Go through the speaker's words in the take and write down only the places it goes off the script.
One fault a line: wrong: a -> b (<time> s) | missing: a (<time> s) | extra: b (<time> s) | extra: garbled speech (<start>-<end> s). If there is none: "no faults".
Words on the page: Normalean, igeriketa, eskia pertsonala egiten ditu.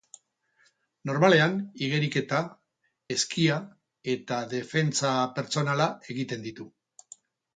extra: eta defentsa (4.1 s)